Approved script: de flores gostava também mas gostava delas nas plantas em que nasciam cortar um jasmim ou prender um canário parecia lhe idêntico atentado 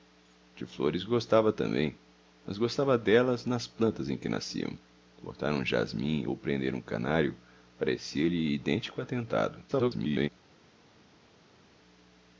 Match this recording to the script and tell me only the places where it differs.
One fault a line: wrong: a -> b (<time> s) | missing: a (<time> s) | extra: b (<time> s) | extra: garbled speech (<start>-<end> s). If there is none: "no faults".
extra: garbled speech (9.7-10.3 s)